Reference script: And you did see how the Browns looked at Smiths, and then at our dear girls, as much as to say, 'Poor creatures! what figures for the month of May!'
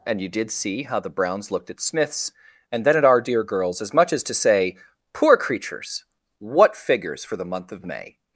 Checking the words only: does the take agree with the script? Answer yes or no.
yes